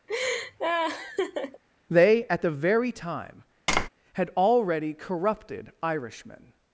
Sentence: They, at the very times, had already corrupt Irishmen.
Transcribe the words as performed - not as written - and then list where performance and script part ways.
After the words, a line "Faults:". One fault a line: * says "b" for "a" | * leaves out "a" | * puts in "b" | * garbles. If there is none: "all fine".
They, at the very time, had already corrupted Irishmen.
Faults:
* says "time" for "times"
* says "corrupted" for "corrupt"